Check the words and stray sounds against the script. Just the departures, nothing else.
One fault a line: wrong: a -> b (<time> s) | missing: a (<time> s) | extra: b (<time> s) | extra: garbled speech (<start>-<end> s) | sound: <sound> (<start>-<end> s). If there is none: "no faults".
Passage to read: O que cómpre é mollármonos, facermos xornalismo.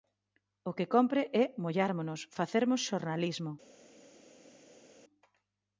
no faults